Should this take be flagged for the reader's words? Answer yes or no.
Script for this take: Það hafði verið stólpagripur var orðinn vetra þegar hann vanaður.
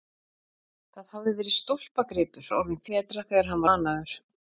no